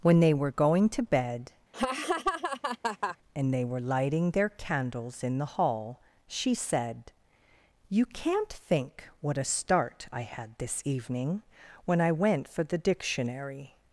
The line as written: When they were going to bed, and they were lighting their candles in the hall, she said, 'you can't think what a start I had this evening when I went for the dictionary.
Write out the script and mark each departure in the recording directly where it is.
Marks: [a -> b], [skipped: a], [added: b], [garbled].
When they were going to bed, and they were lighting their candles in the hall, she said, 'you can't think what a start I had this evening when I went for the dictionary.